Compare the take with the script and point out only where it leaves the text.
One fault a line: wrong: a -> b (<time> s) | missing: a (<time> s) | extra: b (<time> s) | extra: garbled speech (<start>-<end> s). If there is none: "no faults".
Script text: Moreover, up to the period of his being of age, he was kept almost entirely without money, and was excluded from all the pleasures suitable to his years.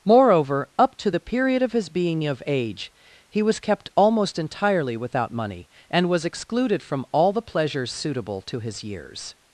no faults